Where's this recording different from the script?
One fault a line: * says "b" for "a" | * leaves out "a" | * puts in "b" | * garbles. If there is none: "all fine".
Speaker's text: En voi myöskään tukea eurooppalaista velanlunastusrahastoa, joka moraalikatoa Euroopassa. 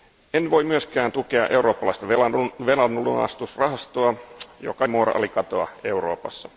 all fine